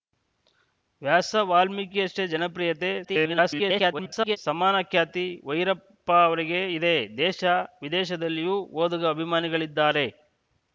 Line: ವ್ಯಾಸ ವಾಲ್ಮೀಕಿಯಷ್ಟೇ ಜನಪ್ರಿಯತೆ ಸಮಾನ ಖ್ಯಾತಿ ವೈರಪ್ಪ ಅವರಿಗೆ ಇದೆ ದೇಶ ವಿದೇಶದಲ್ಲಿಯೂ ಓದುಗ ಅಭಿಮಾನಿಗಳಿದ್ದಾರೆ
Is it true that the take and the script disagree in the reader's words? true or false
true